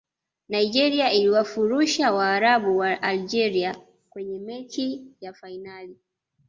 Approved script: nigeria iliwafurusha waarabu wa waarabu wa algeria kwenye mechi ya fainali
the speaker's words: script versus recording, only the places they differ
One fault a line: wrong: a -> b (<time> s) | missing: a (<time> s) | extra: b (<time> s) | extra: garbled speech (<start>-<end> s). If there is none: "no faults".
missing: waarabu wa (3.0 s)